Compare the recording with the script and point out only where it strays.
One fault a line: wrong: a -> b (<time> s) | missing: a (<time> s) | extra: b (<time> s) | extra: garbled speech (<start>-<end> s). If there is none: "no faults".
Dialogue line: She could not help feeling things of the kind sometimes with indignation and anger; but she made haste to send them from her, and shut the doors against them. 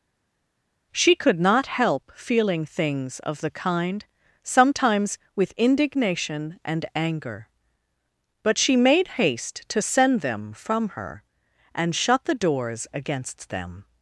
no faults